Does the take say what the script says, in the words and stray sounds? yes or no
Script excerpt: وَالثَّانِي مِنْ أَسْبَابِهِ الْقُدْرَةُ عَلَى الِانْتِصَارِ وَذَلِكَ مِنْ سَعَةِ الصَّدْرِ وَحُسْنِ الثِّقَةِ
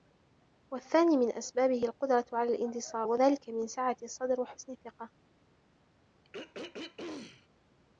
no